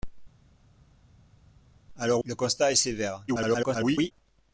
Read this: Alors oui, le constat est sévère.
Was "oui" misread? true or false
true